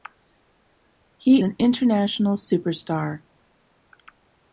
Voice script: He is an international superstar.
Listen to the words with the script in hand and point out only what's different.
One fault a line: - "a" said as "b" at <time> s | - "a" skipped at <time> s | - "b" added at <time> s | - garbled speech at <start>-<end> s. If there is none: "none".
- "is" skipped at 1.4 s